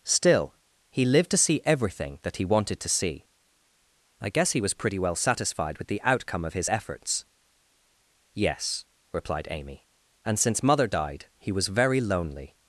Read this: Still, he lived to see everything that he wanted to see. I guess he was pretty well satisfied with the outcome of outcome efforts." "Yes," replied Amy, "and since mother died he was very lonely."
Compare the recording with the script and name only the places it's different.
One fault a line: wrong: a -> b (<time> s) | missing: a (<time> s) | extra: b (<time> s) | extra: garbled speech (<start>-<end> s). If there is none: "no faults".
wrong: outcome -> his (6.5 s)